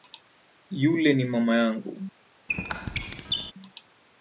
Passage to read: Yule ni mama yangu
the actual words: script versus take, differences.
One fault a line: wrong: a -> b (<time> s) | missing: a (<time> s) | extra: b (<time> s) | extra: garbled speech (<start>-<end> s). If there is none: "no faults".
no faults